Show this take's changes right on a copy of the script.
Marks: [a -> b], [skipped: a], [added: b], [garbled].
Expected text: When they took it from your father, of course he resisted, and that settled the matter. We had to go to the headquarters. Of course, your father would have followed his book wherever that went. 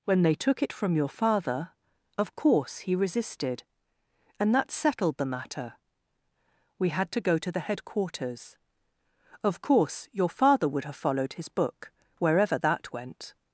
When they took it from your father, of course he resisted, and that settled the matter. We had to go to the headquarters. Of course, your father would have followed his book wherever that went.